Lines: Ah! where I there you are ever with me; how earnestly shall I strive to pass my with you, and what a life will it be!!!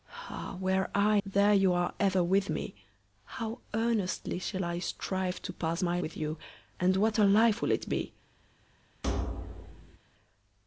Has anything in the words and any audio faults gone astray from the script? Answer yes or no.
yes